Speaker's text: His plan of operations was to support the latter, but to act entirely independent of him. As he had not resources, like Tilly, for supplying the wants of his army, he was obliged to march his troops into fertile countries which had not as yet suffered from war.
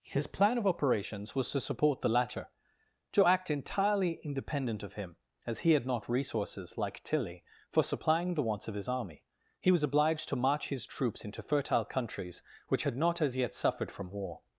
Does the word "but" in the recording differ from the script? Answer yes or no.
yes